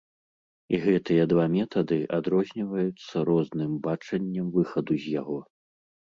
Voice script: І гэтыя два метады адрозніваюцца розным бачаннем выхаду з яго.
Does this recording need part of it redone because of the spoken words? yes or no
no